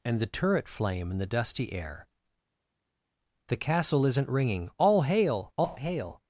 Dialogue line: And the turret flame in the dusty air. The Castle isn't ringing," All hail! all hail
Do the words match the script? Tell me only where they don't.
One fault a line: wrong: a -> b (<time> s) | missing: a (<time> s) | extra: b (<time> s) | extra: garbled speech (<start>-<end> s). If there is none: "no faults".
no faults